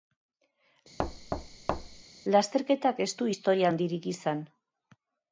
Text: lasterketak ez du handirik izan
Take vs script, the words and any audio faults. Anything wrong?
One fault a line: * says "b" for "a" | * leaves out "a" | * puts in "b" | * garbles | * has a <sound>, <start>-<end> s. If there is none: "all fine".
* has a thud, 1.0-2.0 s
* puts in "historia"